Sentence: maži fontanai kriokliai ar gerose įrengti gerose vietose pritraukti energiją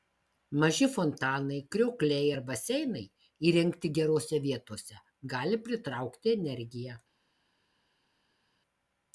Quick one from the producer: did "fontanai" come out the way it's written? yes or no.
yes